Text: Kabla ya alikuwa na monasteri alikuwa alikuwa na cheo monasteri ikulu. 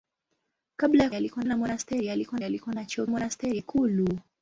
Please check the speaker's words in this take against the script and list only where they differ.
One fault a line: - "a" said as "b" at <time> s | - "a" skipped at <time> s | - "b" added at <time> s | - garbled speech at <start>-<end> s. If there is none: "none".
none